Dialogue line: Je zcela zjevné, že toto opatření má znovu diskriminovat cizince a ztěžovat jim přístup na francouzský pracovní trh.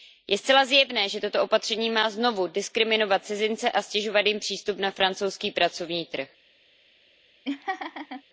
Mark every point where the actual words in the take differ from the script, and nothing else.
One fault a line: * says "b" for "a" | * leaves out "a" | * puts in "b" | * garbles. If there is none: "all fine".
all fine